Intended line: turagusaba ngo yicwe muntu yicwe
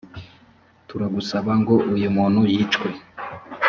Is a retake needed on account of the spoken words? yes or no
yes